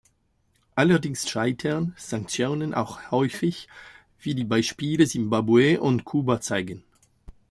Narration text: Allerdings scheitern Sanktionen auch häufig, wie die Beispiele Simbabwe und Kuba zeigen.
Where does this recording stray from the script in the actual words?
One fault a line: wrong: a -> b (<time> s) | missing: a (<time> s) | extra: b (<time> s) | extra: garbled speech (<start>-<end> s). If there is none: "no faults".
no faults